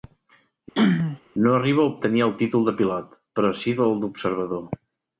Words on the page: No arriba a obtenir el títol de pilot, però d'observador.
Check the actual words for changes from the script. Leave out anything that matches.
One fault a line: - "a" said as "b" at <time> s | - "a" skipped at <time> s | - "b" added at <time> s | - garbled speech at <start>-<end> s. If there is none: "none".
- "sí el" added at 3.6 s